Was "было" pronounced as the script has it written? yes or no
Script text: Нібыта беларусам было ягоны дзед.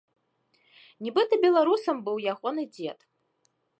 no